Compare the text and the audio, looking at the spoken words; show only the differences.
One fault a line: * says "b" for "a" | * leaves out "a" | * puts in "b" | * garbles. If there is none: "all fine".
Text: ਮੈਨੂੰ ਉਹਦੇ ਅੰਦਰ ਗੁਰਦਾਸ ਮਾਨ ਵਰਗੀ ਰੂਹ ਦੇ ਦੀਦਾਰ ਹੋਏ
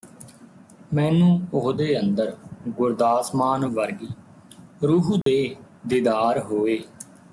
all fine